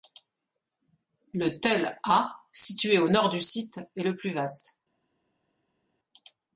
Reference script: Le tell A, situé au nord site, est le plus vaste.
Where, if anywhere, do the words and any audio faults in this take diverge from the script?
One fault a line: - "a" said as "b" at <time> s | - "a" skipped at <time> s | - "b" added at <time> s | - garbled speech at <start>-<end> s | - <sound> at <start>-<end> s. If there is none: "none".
- "du" added at 3.3 s